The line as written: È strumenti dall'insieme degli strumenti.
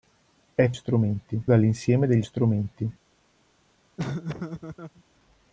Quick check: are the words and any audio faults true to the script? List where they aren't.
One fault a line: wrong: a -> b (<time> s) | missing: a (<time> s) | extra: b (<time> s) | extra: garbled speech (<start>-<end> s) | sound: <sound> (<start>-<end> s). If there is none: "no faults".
sound: laugh (4.0-5.0 s)